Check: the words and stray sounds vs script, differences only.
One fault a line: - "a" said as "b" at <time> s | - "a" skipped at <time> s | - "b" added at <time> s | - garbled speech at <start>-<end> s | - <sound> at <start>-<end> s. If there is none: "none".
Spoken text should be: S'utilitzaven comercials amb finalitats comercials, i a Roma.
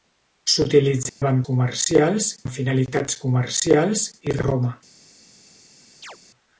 - dropout at 1.1-1.2 s
- chirp at 6.0-6.2 s